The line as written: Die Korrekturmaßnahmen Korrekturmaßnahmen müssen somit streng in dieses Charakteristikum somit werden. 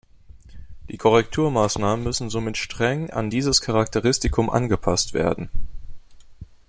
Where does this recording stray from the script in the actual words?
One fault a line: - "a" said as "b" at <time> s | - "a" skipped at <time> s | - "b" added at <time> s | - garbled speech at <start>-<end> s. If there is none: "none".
- "Korrekturmaßnahmen" skipped at 2.0 s
- "in" said as "an" at 3.1 s
- "somit" said as "angepasst" at 4.5 s